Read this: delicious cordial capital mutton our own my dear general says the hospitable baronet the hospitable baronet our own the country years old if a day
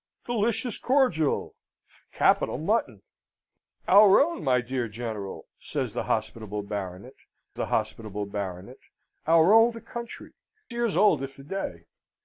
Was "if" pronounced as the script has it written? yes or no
yes